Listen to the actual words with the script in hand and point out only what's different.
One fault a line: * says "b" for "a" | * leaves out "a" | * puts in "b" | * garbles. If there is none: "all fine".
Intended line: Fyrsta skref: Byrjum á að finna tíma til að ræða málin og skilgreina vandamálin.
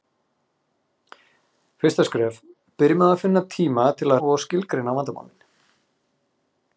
* leaves out "ræða málin"